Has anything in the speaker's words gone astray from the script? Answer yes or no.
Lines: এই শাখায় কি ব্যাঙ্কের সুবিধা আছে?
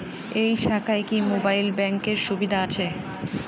yes